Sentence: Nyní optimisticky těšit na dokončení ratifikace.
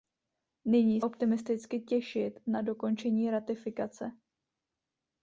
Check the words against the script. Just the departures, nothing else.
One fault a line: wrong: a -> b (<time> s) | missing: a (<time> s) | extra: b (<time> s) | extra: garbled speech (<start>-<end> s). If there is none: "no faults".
no faults